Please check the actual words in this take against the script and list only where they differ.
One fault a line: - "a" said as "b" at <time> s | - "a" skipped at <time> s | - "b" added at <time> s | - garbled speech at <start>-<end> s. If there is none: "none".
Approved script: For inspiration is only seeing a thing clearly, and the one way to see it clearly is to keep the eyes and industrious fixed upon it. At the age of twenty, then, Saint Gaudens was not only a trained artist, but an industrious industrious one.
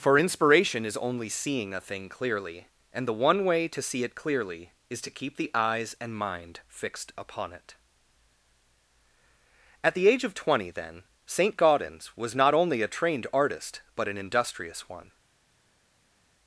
- "industrious" said as "mind" at 6.1 s
- "industrious" skipped at 14.9 s